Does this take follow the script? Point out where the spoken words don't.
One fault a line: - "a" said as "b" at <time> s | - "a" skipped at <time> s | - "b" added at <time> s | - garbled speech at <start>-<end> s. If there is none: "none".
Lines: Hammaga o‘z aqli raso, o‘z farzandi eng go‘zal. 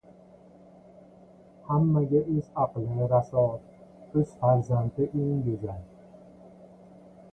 none